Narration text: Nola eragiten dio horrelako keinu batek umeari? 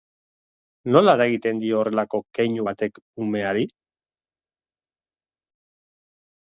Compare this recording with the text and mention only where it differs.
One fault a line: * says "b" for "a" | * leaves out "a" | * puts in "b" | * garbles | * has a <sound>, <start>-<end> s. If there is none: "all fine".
all fine